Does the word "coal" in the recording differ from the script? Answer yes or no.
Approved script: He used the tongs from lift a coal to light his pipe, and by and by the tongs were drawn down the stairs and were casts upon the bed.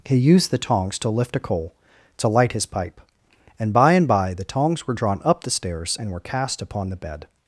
no